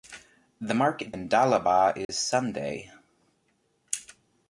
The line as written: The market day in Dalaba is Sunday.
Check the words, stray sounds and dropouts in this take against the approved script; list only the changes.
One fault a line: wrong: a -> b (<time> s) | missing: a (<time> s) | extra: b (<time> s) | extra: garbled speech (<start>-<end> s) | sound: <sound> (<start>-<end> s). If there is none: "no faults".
missing: day (1.1 s)
sound: dropout (2.0-2.1 s)